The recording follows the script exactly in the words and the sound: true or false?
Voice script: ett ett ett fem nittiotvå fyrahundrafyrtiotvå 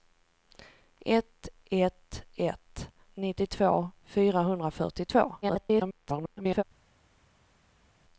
false